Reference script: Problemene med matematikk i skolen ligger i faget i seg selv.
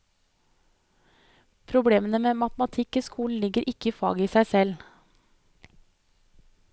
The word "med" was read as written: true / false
true